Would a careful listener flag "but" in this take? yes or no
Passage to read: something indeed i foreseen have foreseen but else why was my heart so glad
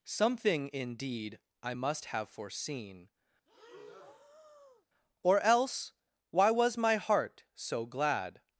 yes